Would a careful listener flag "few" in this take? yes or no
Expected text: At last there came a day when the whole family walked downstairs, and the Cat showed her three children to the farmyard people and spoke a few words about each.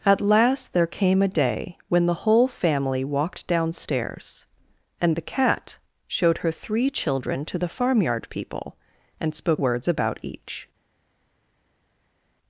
yes